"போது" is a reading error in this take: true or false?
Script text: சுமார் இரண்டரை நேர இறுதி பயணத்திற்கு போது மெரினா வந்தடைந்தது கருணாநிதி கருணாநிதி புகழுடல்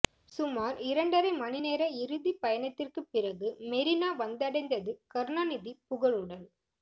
true